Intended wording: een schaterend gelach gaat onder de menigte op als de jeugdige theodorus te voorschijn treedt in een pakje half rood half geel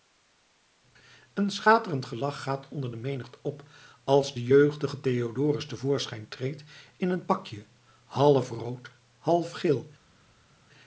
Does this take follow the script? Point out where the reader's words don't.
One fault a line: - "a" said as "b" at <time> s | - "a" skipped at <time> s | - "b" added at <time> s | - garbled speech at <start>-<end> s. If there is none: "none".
none